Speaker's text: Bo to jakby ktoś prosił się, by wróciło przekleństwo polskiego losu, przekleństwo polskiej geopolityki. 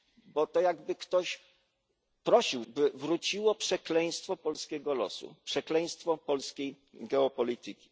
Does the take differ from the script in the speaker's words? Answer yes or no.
yes